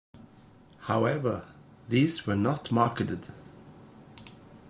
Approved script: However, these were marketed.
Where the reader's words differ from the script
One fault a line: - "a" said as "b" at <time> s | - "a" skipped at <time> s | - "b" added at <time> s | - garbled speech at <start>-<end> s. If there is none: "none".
- "not" added at 2.4 s